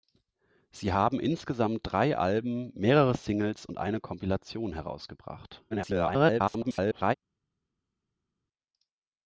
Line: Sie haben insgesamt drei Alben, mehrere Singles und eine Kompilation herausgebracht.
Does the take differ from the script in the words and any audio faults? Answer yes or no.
yes